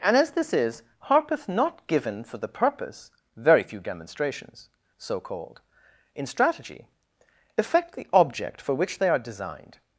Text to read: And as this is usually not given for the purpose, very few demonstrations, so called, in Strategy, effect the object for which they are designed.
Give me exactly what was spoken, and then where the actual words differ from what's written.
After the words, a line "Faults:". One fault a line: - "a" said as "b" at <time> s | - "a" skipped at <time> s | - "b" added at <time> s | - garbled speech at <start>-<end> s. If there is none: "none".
And as this is harpeth not given for the purpose, very few demonstrations, so called, in Strategy, effect the object for which they are designed.
Faults:
- "usually" said as "harpeth" at 1.0 s